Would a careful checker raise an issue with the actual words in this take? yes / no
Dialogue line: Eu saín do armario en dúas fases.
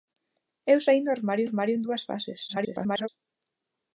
yes